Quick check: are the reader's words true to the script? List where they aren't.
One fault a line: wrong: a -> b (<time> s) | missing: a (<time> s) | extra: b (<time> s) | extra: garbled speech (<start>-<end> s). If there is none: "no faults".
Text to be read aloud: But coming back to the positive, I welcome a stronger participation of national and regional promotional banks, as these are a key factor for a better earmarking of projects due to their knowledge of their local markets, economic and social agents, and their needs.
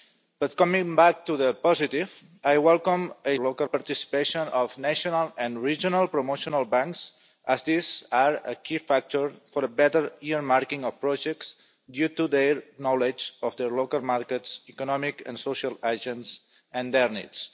wrong: stronger -> local (3.4 s)